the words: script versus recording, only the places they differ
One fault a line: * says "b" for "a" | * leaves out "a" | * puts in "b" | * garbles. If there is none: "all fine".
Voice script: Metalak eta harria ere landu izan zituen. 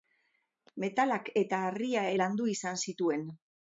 * leaves out "ere"